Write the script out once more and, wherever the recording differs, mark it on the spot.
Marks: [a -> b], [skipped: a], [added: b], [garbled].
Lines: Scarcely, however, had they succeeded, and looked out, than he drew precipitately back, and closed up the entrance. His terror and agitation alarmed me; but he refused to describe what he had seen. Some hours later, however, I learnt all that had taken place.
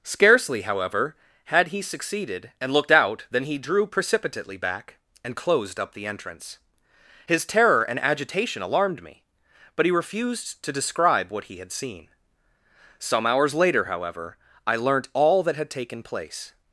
Scarcely, however, had [they -> he] succeeded, and looked out, than he drew precipitately back, and closed up the entrance. His terror and agitation alarmed me; but he refused to describe what he had seen. Some hours later, however, I learnt all that had taken place.